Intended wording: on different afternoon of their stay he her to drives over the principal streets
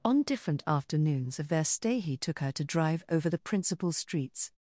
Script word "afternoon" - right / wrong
wrong